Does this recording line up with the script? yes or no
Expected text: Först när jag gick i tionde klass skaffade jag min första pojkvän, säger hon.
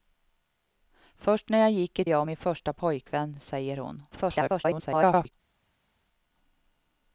no